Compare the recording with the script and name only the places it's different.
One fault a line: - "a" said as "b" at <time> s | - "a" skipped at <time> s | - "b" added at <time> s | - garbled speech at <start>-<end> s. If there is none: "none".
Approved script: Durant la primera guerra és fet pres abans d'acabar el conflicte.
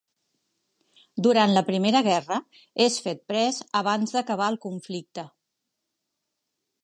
none